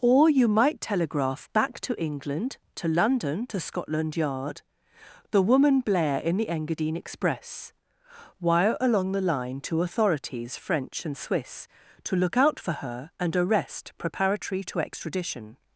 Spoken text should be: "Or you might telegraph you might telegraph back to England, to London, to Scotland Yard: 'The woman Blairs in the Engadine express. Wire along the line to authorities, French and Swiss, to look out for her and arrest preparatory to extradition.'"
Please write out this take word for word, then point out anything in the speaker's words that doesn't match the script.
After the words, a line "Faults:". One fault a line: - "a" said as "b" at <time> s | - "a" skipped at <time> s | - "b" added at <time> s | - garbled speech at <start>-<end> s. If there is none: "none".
"Or you might telegraph back to England, to London, to Scotland Yard: 'The woman Blair in the Engadine express. Wire along the line to authorities, French and Swiss, to look out for her and arrest preparatory to extradition.'"
Faults:
- "you might telegraph" skipped at 1.5 s
- "Blairs" said as "Blair" at 5.8 s